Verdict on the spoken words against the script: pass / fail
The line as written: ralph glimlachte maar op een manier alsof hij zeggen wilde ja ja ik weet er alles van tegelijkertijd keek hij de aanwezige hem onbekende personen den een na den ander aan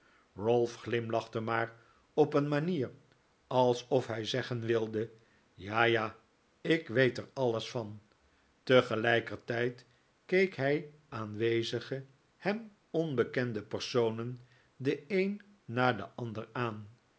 fail